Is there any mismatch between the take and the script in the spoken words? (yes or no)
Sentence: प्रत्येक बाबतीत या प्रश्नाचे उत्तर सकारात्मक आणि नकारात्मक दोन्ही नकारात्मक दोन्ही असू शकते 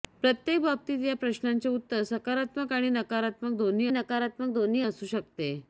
no